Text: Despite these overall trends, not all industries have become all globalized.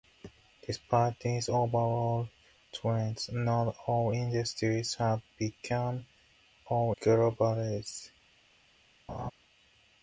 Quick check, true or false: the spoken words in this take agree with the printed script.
true